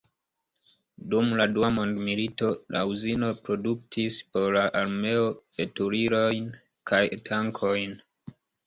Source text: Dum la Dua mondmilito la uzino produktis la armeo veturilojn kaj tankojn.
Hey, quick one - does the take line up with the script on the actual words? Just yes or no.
no